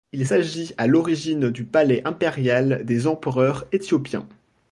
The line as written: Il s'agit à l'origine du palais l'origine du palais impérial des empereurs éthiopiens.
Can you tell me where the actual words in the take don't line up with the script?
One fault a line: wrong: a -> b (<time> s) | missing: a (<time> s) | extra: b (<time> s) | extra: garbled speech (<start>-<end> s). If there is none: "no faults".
missing: l'origine du palais (2.0 s)